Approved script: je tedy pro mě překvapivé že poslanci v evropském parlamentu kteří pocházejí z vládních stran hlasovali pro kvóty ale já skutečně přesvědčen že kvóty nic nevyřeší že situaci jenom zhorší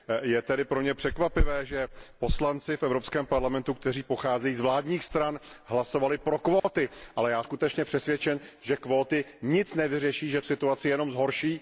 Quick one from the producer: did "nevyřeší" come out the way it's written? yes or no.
yes